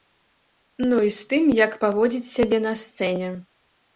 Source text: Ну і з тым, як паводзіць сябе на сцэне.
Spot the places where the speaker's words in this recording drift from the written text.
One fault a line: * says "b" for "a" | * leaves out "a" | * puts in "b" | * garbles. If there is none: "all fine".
all fine